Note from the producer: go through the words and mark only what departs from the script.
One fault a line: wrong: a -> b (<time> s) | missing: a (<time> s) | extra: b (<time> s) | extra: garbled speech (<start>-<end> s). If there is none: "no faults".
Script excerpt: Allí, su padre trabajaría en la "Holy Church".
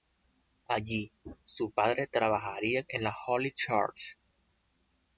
no faults